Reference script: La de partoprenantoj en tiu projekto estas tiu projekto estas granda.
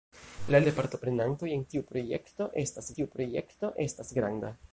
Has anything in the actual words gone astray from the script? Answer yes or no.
no